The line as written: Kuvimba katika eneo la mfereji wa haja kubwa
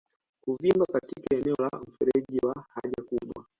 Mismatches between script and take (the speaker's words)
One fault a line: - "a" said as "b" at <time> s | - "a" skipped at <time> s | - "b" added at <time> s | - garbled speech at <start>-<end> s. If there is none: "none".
none